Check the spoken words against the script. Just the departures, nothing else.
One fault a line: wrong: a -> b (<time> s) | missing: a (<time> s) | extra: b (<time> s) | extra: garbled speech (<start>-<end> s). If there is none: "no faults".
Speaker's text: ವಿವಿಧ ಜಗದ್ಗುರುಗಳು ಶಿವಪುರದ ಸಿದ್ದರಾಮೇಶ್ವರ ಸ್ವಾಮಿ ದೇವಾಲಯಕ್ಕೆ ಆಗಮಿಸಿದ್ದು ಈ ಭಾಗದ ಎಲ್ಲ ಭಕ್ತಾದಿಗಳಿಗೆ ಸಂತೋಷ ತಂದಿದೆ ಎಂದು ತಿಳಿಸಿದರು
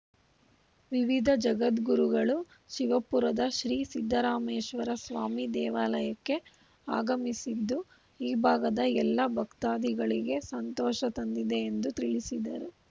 extra: ಶ್ರೀ (3.5 s)